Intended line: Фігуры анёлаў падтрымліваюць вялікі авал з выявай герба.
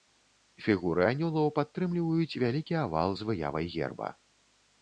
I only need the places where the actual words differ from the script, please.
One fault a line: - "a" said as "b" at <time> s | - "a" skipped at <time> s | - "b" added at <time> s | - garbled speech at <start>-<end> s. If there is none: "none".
none